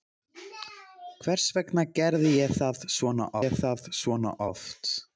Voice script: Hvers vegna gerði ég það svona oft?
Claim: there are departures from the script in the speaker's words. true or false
true